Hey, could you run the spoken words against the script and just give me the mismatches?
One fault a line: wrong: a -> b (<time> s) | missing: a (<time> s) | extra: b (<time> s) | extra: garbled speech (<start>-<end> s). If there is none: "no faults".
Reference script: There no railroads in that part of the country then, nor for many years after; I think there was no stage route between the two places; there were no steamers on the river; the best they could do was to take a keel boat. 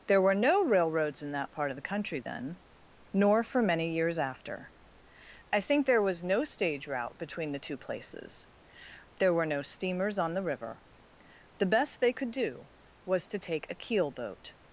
extra: were (0.2 s)